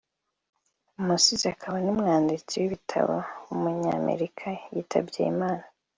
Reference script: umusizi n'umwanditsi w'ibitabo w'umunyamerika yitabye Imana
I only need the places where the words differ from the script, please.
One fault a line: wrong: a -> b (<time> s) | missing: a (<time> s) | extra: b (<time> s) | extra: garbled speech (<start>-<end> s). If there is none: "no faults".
extra: akaba (1.5 s)